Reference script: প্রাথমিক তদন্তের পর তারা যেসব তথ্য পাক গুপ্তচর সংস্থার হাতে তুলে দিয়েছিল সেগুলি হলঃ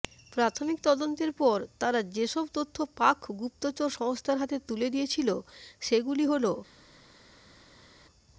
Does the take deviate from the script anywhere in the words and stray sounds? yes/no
no